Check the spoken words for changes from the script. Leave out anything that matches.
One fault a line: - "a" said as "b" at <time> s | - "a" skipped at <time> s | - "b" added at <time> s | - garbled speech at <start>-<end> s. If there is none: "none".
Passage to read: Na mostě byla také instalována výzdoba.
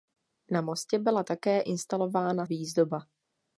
none